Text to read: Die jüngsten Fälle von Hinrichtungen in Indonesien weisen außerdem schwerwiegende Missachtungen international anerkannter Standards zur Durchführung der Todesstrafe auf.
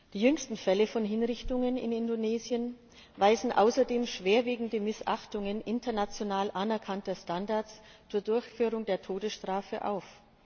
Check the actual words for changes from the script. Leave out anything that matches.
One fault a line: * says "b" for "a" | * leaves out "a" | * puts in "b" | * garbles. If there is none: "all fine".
all fine